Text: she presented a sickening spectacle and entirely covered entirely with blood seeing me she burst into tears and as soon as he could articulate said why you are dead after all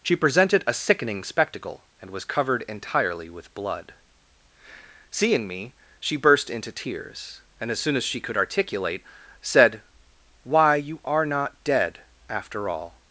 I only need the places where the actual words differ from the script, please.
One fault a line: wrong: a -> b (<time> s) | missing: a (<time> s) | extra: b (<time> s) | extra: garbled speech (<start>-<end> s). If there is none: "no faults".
wrong: entirely -> was (2.1 s)
wrong: he -> she (8.0 s)
extra: not (11.2 s)